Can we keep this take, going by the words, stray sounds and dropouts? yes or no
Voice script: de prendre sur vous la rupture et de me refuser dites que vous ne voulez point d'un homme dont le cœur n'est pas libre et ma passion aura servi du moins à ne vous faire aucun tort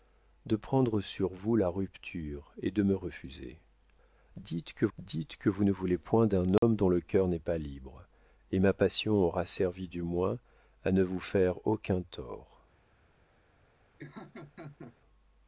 no